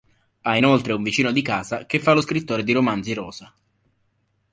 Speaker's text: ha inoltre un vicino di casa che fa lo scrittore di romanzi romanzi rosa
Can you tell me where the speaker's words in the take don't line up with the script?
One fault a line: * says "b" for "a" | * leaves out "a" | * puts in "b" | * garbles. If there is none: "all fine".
* leaves out "romanzi"